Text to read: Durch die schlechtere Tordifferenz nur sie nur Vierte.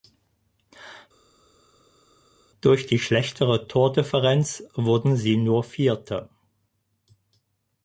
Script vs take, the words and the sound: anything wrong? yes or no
yes